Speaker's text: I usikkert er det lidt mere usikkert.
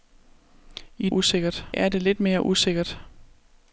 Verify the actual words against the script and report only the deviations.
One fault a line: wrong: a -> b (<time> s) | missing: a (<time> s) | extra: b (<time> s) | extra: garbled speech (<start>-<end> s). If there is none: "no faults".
no faults